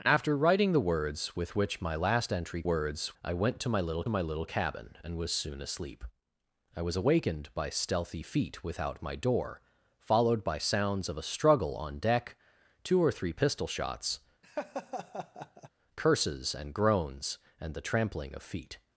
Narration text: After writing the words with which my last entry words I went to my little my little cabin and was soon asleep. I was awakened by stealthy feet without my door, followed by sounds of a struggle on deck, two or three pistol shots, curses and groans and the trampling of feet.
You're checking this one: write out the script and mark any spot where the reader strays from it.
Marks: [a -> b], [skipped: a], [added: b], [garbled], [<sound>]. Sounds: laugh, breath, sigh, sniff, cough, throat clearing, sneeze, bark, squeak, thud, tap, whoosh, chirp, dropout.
After writing the words with which my last entry words I went to my little my little cabin and was soon asleep. I was awakened by stealthy feet without my door, followed by sounds of a struggle on deck, two or three pistol shots, [laugh] curses and groans and the trampling of feet.